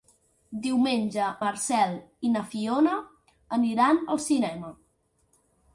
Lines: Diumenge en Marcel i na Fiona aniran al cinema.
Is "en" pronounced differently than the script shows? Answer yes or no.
yes